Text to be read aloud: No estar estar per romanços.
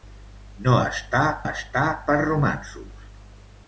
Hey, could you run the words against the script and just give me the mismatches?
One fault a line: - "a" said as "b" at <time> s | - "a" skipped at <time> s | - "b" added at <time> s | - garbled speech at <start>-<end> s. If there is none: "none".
none